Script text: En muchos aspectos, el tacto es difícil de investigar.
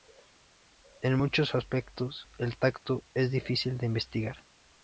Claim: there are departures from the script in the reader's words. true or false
false